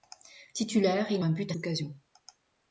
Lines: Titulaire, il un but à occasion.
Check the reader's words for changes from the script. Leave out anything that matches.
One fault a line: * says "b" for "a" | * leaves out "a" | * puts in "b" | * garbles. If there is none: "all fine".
all fine